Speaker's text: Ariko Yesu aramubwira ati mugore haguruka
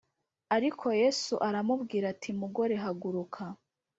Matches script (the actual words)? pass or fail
pass